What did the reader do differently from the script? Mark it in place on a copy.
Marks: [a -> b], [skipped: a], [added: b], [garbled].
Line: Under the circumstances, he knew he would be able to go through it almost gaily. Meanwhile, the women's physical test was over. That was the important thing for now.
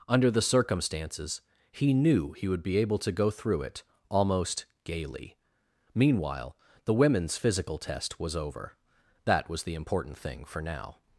Under the circumstances, he knew he would be able to go through it almost gaily. Meanwhile, the women's physical test was over. That was the important thing for now.